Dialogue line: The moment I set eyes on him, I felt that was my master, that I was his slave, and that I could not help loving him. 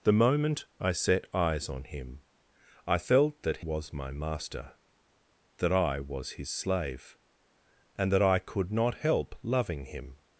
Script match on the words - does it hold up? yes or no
yes